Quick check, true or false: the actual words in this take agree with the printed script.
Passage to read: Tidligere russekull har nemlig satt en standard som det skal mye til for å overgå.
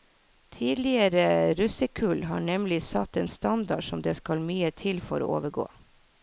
true